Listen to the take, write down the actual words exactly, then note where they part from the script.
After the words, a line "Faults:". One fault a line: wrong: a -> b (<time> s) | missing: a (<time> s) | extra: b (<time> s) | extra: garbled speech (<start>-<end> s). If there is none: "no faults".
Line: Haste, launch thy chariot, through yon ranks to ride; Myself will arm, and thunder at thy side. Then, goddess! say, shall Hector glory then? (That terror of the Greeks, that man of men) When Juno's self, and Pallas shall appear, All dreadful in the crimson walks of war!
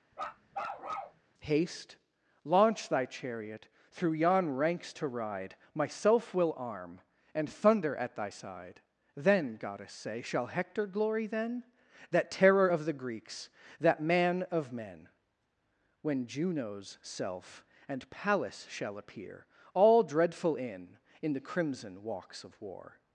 Haste, launch thy chariot, through yon ranks to ride; Myself will arm, and thunder at thy side. Then, goddess! say, shall Hector glory then? (That terror of the Greeks, that man of men) When Juno's self, and Pallas shall appear, All dreadful in in the crimson walks of war!
Faults:
extra: in (21.2 s)